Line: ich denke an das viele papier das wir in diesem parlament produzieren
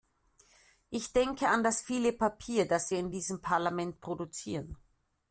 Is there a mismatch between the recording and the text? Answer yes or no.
no